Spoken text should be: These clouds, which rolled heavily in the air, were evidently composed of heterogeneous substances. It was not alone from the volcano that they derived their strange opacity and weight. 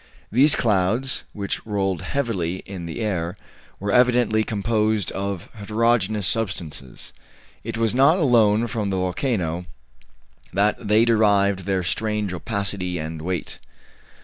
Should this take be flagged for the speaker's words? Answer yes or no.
no